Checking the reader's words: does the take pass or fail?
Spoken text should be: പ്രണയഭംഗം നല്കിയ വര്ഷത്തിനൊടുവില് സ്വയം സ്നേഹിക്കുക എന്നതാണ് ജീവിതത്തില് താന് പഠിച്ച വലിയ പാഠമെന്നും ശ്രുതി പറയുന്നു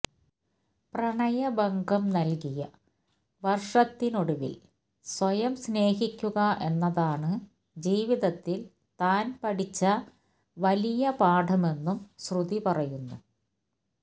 pass